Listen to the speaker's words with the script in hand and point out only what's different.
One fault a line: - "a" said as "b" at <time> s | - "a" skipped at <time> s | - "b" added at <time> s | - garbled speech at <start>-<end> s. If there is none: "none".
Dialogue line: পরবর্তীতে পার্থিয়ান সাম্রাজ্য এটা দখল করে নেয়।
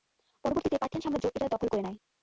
none